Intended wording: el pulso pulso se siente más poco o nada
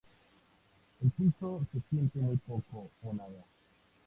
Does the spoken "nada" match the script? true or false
true